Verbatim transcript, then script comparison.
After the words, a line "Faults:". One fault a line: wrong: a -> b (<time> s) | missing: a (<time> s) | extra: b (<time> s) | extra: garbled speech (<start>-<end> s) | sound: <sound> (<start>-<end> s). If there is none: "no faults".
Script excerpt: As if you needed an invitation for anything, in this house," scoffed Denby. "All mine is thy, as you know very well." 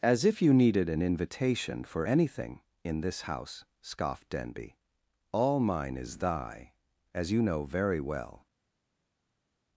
As if you needed an invitation for anything, in this house," scoffed Denby. "All mine is thy, as you know very well."
Faults:
no faults